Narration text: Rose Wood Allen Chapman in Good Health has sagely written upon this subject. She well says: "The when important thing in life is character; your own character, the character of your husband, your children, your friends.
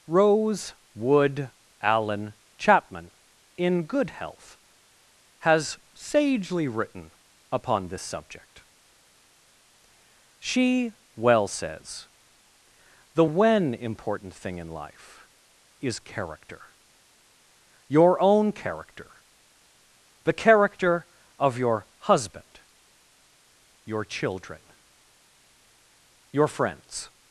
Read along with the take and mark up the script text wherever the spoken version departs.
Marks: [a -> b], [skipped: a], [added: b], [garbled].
Rose Wood Allen Chapman in Good Health has sagely written upon this subject. She well says: "The when important thing in life is character; your own character, the character of your husband, your children, your friends.